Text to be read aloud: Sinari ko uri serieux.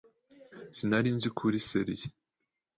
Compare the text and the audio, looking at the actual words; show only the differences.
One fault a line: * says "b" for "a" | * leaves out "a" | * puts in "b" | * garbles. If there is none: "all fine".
* puts in "nzi"